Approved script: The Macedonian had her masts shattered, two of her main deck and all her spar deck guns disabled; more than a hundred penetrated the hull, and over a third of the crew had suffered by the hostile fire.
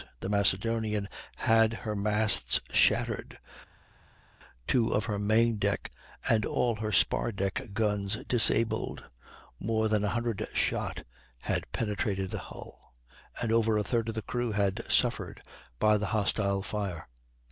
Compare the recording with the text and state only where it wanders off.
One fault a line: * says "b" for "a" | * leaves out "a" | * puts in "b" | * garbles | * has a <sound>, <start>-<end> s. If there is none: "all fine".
* puts in "shot had"